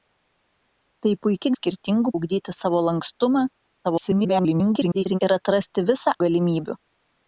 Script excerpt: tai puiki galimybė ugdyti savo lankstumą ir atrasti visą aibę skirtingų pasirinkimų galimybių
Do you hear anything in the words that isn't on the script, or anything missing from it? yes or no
yes